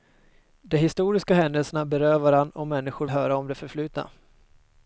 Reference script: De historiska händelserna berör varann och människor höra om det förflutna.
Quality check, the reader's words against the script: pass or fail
pass